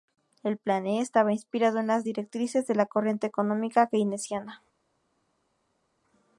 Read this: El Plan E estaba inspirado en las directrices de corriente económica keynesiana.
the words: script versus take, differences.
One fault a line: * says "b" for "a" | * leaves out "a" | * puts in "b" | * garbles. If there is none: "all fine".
* puts in "la"